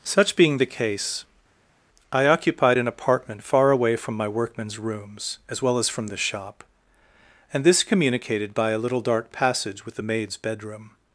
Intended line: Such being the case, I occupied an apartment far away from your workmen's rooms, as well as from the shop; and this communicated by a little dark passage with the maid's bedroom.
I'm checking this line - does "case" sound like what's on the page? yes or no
yes